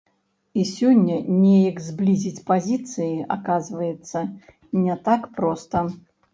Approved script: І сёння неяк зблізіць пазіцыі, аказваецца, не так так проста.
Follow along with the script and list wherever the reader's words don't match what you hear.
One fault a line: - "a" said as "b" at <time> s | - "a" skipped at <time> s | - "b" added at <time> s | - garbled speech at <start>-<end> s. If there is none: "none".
- "так" skipped at 5.3 s